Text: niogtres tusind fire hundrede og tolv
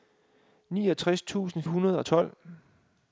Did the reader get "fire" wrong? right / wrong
wrong